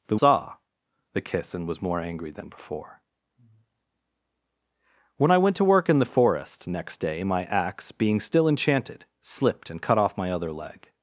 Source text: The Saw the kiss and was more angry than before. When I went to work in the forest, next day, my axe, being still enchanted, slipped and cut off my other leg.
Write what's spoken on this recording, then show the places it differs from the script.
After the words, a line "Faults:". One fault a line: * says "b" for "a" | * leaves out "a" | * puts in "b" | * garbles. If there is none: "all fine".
The Saw the kiss and was more angry than before. When I went to work in the forest, next day, my axe, being still enchanted, slipped and cut off my other leg.
Faults:
all fine